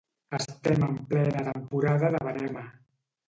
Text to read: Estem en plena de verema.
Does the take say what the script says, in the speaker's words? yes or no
no